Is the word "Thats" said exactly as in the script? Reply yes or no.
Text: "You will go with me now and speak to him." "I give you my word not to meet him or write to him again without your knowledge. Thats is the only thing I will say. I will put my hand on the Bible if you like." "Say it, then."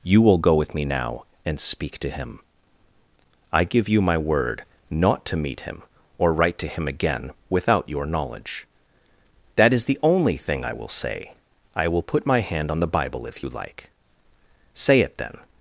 no